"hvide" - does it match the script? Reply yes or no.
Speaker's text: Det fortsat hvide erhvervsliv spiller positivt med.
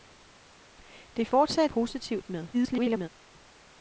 no